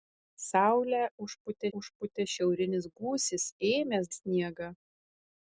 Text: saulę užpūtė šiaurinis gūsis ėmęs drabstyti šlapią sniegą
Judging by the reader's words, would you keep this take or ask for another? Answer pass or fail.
fail